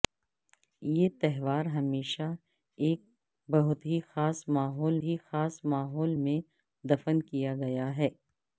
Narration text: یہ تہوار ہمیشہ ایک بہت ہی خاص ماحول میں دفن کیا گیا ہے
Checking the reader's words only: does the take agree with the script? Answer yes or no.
no